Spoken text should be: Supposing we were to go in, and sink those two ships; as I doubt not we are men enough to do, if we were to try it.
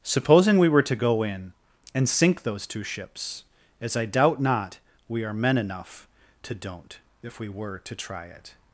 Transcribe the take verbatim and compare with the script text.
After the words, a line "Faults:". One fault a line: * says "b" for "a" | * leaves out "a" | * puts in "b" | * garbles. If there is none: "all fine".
Supposing we were to go in, and sink those two ships; as I doubt not we are men enough to don't, if we were to try it.
Faults:
* says "don't" for "do"